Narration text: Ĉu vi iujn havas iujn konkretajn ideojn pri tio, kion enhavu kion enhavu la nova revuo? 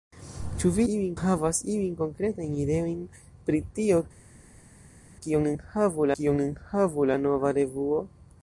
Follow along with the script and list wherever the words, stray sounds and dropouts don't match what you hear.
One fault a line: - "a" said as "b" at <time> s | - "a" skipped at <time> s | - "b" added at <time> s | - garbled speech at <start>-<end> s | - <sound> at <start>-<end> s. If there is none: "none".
none